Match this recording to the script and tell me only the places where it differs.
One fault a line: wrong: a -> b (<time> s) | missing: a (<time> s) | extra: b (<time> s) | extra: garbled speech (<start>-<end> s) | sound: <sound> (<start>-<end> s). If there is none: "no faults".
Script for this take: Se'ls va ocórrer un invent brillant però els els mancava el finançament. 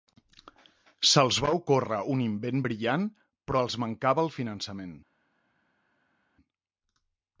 missing: els (3.8 s)